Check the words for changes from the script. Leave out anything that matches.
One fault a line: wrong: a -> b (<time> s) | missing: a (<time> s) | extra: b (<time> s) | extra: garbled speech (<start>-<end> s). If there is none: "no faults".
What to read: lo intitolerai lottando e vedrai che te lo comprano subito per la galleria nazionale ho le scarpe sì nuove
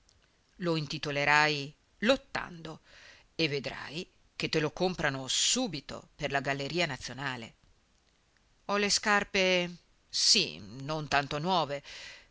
extra: non tanto (10.6 s)